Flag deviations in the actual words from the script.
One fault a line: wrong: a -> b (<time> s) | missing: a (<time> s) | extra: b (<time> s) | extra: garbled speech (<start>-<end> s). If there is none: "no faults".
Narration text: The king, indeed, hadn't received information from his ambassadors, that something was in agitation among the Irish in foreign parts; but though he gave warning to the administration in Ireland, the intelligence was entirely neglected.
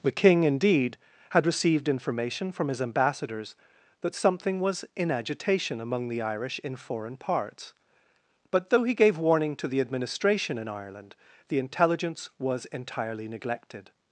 wrong: hadn't -> had (1.3 s)